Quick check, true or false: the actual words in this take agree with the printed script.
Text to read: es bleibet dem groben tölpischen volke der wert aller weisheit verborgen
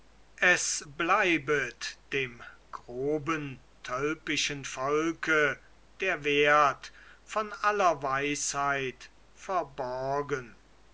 false